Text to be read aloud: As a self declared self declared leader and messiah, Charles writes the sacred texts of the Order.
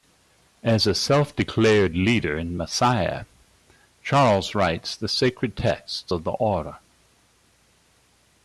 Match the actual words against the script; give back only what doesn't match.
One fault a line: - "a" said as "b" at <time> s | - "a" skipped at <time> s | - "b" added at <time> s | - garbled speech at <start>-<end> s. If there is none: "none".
- "self declared" skipped at 1.9 s